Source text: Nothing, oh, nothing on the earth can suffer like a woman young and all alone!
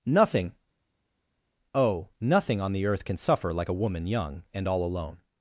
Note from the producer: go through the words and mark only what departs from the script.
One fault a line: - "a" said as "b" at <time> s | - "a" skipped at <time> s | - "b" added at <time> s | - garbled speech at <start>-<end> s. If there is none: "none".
none